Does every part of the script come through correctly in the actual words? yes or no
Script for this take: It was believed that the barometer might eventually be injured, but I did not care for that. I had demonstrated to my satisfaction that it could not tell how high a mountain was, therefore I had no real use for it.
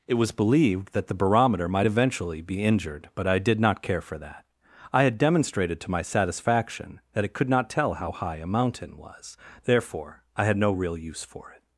yes